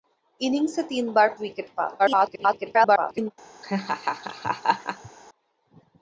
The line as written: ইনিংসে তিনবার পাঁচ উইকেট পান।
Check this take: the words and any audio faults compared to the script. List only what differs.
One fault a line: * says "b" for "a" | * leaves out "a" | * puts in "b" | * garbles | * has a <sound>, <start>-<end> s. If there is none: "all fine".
* leaves out "পাঁচ"
* garbles
* has a laugh, 3.6-5.1 s